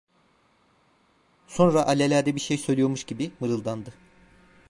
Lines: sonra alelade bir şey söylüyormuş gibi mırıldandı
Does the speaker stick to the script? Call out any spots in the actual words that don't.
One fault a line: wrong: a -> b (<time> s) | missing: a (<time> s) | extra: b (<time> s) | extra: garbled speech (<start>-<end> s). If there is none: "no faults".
no faults